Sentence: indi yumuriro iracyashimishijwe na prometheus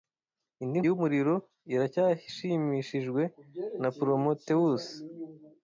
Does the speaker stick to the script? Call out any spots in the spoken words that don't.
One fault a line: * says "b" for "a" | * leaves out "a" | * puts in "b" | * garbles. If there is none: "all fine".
all fine